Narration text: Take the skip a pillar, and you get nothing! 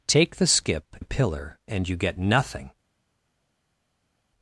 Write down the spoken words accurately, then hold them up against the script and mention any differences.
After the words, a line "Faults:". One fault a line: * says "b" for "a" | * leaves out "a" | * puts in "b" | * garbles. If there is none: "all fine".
Take the skip a pillar, and you get nothing!
Faults:
all fine